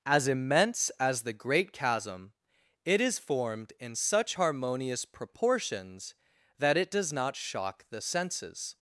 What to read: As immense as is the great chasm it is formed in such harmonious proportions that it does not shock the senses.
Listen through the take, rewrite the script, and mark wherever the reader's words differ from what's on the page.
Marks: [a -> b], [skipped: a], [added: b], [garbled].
As immense as [skipped: is] the great chasm it is formed in such harmonious proportions that it does not shock the senses.